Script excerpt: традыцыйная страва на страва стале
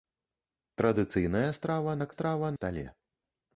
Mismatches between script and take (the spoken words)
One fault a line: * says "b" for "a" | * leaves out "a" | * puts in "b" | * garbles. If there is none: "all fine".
all fine